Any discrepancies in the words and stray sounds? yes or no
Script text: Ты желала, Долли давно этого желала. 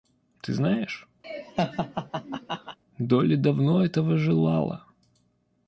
yes